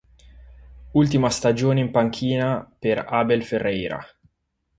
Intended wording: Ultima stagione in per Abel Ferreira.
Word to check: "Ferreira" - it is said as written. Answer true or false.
true